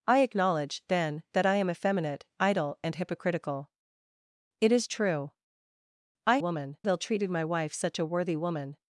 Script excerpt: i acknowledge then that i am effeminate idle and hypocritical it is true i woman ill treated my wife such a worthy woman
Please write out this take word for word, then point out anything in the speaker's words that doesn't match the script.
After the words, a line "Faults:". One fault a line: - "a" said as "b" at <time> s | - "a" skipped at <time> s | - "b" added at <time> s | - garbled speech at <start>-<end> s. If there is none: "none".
i acknowledge then that i am effeminate idle and hypocritical it is true i woman ill treated my wife such a worthy woman
Faults:
none